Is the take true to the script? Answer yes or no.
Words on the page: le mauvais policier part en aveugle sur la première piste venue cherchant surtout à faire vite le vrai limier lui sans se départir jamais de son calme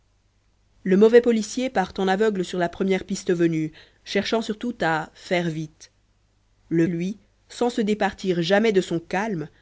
no